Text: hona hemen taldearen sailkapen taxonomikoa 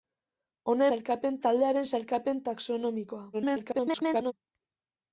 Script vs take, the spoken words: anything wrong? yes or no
yes